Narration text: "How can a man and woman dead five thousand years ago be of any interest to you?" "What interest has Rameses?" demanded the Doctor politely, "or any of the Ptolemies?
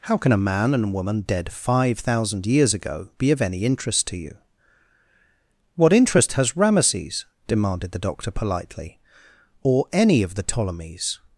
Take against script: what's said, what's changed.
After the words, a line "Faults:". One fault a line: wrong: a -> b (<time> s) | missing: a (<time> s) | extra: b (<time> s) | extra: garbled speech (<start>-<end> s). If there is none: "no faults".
"How can a man and woman dead five thousand years ago be of any interest to you?" "What interest has Rameses?" demanded the Doctor politely, "or any of the Ptolemies?
Faults:
no faults